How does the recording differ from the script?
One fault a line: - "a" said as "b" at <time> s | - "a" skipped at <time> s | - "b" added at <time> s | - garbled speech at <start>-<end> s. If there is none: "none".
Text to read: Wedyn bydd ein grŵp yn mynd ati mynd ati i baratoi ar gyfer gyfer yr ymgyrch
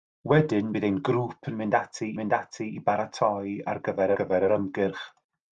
none